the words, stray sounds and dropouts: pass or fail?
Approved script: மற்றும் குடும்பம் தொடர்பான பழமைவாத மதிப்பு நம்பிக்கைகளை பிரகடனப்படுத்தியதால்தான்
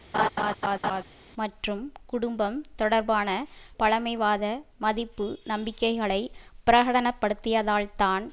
fail